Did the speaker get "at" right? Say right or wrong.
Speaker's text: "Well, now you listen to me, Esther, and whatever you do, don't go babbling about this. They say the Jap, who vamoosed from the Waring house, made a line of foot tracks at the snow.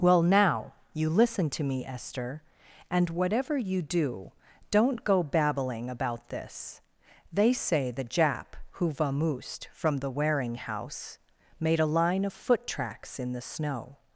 wrong